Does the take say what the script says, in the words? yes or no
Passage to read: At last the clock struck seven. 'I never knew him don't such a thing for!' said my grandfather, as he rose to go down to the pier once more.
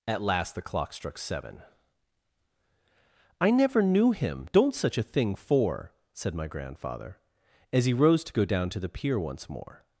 yes